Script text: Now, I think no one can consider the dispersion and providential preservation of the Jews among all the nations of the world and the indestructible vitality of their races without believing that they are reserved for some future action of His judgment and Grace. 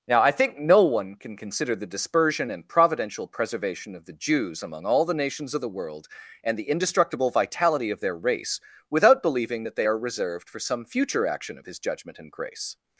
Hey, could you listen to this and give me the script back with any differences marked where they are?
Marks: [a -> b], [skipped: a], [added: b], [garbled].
Now, I think no one can consider the dispersion and providential preservation of the Jews among all the nations of the world and the indestructible vitality of their [races -> race] without believing that they are reserved for some future action of His judgment and Grace.